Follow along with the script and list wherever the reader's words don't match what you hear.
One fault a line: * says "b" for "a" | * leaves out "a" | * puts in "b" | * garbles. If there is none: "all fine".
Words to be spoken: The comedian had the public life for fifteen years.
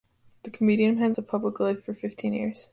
all fine